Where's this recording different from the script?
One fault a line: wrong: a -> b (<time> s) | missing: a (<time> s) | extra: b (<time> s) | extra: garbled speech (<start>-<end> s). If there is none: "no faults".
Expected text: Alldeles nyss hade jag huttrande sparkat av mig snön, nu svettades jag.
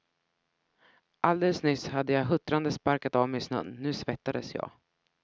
no faults